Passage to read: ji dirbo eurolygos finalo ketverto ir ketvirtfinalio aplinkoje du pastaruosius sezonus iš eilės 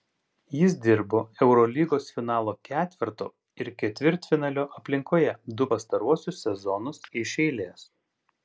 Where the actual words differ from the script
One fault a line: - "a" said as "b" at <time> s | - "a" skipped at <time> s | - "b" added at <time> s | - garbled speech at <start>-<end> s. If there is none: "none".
- "ji" said as "jis" at 0.6 s